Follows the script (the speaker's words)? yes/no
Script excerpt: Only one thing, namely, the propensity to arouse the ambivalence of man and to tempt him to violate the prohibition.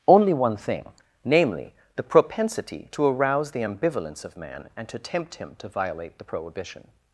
yes